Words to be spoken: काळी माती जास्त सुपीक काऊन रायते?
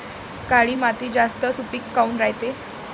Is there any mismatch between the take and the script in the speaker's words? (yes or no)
no